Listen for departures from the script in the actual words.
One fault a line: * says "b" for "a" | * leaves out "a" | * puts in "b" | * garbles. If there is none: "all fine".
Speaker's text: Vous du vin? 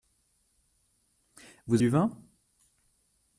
all fine